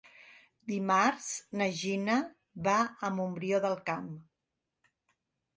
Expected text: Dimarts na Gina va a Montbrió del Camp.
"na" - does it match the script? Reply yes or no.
yes